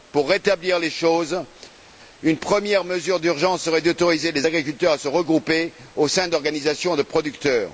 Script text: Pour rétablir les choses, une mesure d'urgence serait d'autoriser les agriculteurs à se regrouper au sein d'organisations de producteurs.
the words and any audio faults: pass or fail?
fail